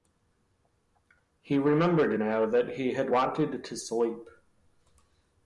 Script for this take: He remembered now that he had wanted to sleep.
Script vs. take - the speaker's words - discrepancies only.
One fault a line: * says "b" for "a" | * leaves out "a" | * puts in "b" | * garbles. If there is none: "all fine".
all fine